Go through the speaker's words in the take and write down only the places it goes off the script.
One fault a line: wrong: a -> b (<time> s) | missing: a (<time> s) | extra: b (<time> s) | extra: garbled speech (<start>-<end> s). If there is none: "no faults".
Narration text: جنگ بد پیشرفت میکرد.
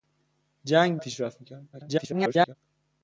missing: بد (1.0 s)
extra: garbled speech (1.7-2.6 s)